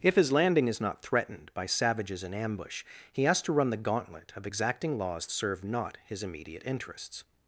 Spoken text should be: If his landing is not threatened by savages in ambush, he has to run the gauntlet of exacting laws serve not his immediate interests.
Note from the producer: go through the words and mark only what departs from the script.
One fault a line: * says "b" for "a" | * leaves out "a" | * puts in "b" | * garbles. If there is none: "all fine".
all fine